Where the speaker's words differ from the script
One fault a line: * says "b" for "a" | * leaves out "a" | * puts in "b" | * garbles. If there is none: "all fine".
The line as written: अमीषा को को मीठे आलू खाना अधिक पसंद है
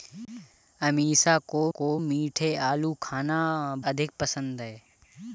all fine